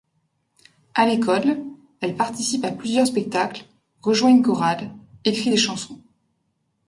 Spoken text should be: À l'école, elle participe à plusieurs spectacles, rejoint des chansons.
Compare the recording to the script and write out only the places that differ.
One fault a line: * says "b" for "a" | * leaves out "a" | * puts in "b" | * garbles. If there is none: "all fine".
* puts in "une chorale écrit"